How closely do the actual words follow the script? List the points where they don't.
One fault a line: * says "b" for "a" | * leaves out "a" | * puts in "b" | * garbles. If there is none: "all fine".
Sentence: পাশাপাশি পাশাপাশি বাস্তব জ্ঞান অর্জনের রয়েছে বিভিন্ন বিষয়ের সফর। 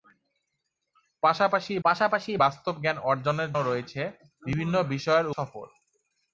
all fine